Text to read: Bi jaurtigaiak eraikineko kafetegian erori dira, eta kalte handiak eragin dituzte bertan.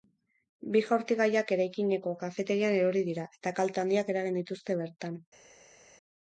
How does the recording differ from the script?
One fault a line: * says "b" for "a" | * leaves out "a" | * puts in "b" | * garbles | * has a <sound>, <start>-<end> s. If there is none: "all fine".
all fine